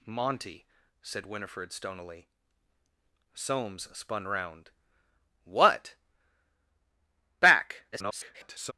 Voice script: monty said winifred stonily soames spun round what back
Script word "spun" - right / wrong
right